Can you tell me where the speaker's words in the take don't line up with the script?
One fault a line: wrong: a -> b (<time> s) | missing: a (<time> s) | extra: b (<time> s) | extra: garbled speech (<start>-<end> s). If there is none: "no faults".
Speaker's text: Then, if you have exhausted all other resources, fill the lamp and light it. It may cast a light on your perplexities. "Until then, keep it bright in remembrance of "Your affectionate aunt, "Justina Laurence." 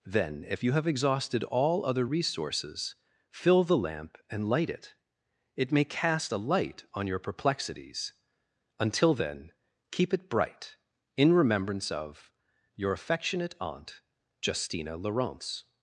no faults